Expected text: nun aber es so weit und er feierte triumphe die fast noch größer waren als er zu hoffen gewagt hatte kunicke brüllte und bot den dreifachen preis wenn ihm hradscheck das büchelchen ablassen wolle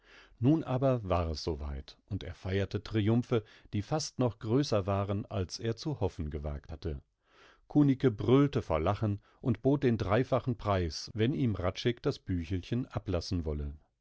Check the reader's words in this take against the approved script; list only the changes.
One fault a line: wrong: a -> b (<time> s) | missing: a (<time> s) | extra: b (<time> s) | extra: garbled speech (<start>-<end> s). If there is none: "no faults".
extra: war (1.1 s)
extra: vor lachen (8.6 s)